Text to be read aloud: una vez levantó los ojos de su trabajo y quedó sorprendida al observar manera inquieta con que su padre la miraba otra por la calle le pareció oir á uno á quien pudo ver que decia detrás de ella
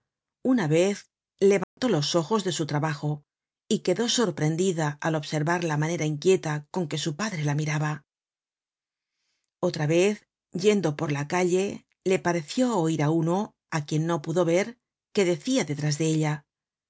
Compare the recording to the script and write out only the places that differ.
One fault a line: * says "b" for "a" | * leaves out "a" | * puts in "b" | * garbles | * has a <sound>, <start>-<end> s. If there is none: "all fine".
* has a dropout, 1.6-1.8 s
* puts in "la"
* puts in "vez yendo"
* puts in "no"